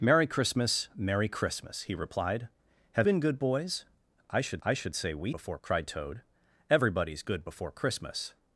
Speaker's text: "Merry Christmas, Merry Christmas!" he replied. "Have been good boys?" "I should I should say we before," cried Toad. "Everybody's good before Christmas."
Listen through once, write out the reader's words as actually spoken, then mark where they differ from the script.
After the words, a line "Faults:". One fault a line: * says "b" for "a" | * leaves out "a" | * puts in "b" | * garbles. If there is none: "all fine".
"Merry Christmas, Merry Christmas!" he replied. "Have been good boys?" "I should I should say we before," cried Toad. "Everybody's good before Christmas."
Faults:
all fine